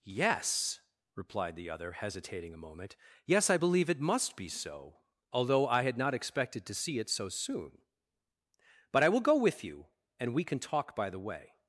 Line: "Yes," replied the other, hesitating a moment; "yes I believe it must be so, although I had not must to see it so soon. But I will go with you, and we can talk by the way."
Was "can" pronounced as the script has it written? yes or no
yes